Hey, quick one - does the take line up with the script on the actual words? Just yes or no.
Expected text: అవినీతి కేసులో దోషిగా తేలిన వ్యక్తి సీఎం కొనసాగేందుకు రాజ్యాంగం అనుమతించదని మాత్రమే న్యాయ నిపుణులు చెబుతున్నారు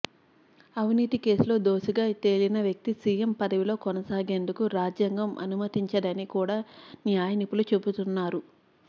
no